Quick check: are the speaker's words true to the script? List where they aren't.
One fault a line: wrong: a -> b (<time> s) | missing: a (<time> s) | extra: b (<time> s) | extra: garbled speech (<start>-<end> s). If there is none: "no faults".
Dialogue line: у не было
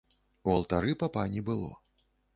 extra: алтары папа (0.5 s)